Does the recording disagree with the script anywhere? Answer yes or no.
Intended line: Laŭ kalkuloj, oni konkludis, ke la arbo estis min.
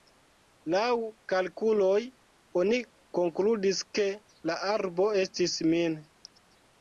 no